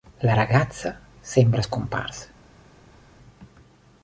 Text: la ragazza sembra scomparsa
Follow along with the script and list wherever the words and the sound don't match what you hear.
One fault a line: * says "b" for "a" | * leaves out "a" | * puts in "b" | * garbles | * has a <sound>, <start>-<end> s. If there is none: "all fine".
all fine